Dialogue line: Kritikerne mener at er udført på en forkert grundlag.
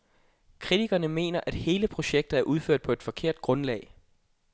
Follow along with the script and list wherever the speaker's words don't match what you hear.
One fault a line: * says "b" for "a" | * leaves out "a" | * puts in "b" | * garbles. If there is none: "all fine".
* puts in "hele projektet"
* says "et" for "en"